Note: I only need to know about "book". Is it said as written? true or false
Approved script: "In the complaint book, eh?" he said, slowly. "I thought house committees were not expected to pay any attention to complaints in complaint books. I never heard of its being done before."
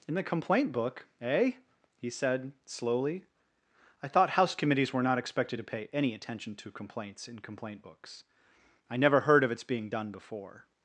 true